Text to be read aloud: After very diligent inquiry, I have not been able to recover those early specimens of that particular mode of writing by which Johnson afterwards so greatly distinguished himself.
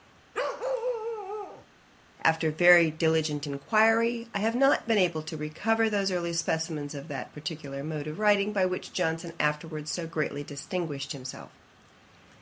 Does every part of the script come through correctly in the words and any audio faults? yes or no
no